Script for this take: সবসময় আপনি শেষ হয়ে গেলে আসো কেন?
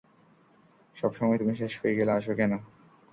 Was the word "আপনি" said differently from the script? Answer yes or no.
yes